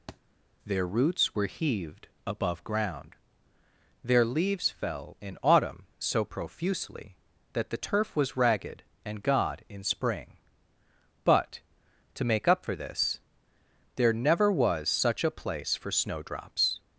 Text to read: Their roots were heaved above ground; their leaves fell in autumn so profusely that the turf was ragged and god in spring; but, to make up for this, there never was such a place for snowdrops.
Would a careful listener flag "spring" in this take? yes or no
no